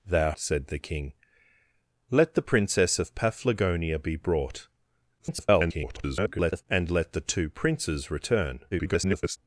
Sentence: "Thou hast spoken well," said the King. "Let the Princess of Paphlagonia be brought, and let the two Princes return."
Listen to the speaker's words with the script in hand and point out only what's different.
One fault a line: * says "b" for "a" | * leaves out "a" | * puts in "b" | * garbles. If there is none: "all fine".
* leaves out "hast spoken well"
* garbles
* garbles